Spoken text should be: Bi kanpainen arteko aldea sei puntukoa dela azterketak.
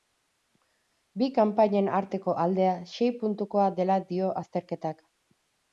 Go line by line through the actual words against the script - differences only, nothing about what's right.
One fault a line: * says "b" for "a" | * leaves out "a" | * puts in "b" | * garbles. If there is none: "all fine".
* puts in "dio"